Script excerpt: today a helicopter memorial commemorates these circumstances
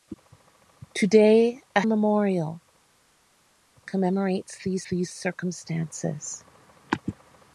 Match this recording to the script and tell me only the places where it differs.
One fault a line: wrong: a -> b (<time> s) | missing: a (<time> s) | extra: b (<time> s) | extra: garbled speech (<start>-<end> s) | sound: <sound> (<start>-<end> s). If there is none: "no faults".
missing: helicopter (1.8 s)
extra: these (4.9 s)